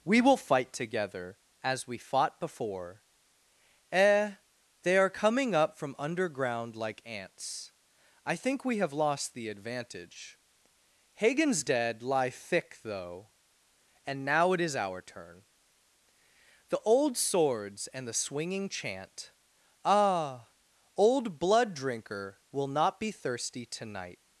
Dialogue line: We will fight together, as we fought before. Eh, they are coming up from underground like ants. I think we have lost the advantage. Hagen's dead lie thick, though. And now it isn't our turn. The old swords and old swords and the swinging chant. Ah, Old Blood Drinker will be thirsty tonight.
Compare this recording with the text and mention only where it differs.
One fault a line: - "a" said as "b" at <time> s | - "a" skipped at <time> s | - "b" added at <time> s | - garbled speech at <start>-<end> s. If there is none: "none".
- "isn't" said as "is" at 14.6 s
- "old swords and" skipped at 18.1 s
- "not" added at 22.7 s